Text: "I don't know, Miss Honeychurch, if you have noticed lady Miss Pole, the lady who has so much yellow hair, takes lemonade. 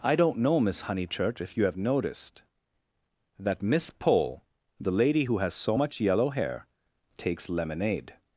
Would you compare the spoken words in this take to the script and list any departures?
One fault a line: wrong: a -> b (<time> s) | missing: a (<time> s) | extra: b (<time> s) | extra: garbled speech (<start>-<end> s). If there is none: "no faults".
wrong: lady -> that (3.4 s)